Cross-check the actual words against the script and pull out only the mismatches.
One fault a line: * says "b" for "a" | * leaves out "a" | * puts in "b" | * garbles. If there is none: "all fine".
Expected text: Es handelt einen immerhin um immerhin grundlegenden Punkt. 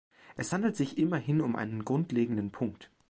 * says "sich" for "einen"
* says "einen" for "immerhin"